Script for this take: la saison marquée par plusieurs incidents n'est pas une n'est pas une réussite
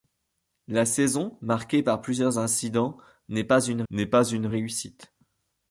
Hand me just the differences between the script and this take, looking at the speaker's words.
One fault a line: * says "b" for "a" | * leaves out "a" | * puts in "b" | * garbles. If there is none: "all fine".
all fine